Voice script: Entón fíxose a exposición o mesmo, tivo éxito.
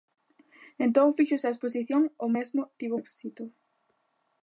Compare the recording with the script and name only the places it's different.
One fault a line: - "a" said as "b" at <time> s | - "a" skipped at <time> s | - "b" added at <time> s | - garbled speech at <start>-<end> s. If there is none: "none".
none